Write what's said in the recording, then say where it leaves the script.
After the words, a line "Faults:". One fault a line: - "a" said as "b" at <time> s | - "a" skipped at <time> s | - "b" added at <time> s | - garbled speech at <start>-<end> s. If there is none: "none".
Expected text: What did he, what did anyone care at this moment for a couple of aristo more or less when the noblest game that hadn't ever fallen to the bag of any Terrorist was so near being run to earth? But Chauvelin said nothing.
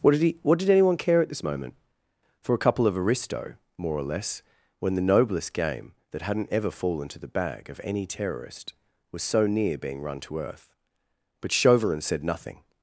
What did he, what did anyone care at this moment for a couple of aristo more or less when the noblest game that hadn't ever fallen to the bag of any Terrorist was so near being run to earth? But Chauvelin said nothing.
Faults:
none